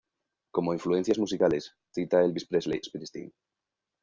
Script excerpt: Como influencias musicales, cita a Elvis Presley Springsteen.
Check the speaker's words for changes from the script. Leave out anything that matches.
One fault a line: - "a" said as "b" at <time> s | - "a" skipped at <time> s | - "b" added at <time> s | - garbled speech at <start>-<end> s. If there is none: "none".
none